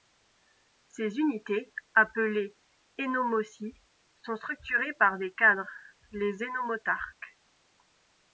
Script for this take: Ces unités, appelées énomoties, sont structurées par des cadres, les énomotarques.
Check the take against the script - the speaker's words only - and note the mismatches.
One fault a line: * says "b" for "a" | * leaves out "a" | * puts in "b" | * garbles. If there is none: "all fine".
all fine